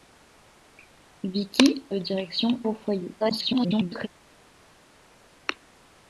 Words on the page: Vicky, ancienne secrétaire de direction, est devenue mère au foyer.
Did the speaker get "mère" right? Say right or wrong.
wrong